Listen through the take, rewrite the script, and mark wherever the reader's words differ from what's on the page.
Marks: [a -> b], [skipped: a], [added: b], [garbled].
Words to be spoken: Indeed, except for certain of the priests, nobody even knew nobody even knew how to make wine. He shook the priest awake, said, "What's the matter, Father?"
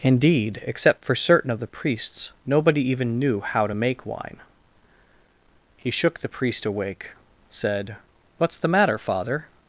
Indeed, except for certain of the priests, nobody even knew [skipped: nobody even knew] how to make wine. He shook the priest awake, said, "What's the matter, Father?"